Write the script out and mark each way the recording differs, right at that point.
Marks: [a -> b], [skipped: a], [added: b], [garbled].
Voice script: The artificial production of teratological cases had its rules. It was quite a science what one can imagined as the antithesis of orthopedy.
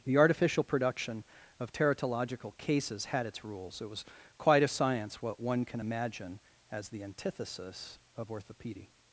The artificial production of teratological cases had its rules. It was quite a science what one can [imagined -> imagine] as the antithesis of orthopedy.